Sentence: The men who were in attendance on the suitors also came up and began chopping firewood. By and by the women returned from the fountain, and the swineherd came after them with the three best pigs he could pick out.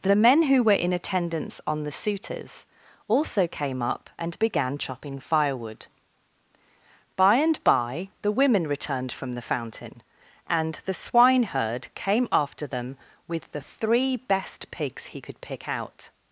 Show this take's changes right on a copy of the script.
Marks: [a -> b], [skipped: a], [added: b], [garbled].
The men who were in attendance on the suitors also came up and began chopping firewood. By and by the women returned from the fountain, and the swineherd came after them with the three best pigs he could pick out.